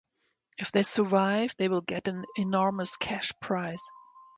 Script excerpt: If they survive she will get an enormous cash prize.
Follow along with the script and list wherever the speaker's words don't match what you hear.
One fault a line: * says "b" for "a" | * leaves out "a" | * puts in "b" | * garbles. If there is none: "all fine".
* says "they" for "she"